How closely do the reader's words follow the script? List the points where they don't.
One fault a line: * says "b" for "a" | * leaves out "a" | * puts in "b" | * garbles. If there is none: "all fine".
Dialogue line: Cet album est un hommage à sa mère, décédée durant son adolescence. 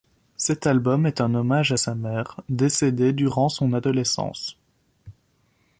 all fine